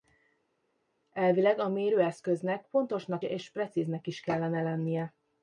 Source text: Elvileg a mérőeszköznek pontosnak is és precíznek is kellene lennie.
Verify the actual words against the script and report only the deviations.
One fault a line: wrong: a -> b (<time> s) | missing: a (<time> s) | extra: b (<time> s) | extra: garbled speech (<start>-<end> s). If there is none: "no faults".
missing: is (3.2 s)